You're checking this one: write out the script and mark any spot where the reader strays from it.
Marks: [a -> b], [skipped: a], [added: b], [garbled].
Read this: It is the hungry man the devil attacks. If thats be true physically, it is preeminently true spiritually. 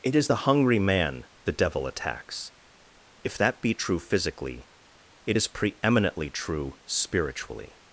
It is the hungry man the devil attacks. If [thats -> that] be true physically, it is preeminently true spiritually.